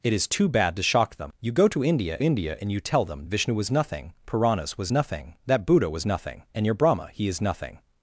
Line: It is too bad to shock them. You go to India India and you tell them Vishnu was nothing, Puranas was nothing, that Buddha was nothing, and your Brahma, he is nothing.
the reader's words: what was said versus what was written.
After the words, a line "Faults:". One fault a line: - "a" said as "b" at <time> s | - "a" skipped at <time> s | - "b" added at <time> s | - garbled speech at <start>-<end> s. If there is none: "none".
It is too bad to shock them. You go to India India and you tell them Vishnu was nothing, Puranas was nothing, that Buddha was nothing, and your Brahma, he is nothing.
Faults:
none